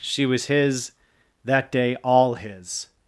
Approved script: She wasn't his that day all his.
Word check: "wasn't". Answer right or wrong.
wrong